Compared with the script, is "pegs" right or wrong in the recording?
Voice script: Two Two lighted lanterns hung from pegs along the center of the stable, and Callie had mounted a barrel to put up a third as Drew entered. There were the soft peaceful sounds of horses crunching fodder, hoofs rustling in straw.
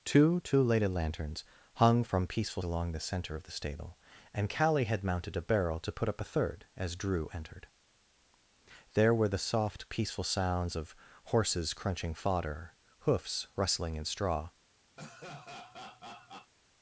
wrong